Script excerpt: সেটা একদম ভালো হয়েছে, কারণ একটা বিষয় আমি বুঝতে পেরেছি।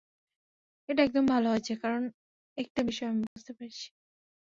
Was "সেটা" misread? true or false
true